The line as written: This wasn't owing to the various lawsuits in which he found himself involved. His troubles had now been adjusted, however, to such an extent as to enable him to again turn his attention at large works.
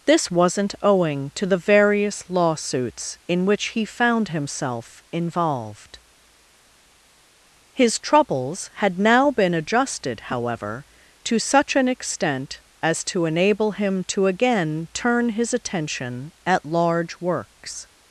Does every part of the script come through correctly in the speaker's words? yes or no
yes